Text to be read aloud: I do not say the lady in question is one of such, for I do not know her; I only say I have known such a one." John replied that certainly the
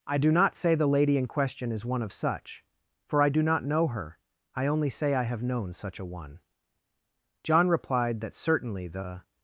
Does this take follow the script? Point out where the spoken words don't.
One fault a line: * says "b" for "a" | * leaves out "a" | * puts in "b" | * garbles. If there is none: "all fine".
all fine